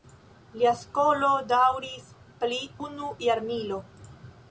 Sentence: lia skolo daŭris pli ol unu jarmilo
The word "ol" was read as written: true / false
false